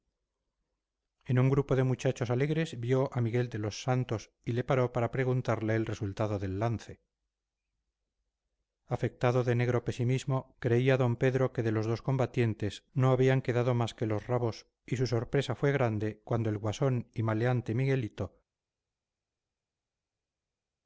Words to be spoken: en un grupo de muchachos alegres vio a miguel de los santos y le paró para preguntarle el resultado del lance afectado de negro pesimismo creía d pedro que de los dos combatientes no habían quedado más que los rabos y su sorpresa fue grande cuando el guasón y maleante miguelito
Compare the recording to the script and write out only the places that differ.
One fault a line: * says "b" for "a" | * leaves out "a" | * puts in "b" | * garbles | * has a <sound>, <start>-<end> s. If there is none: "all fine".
all fine